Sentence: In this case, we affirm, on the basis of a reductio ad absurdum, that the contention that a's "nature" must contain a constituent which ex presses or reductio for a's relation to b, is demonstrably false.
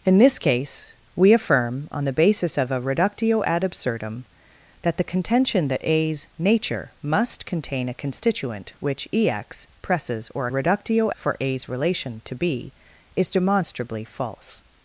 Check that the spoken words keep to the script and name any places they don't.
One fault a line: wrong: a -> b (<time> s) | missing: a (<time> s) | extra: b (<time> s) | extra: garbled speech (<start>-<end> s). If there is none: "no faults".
no faults